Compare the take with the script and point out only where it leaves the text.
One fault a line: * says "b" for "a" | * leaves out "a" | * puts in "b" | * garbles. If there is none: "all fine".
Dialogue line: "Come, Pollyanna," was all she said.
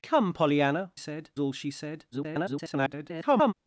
* says "said" for "was"
* garbles